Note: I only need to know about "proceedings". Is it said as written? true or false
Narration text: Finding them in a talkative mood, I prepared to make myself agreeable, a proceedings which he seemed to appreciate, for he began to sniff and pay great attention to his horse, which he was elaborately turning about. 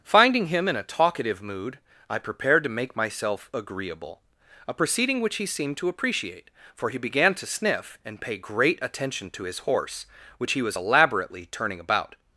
false